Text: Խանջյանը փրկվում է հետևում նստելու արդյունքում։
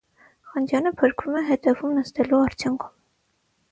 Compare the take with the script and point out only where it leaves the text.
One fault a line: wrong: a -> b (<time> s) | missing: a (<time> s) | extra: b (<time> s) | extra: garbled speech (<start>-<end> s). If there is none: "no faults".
no faults